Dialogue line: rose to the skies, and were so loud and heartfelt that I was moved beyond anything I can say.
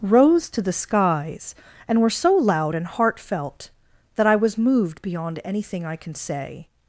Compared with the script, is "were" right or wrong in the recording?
right